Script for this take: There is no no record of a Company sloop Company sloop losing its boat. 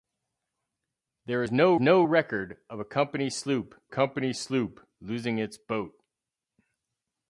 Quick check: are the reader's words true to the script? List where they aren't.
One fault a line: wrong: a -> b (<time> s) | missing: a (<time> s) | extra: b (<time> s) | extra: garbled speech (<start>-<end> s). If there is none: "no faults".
no faults